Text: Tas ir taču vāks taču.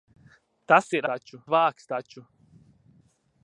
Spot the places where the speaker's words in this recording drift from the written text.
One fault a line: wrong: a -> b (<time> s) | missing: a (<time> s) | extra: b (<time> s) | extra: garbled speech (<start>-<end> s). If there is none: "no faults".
no faults